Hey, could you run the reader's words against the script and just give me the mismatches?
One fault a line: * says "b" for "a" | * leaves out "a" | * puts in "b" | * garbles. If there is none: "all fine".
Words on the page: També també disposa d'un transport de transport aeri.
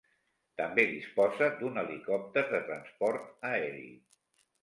* leaves out "també"
* says "helicòpter" for "transport"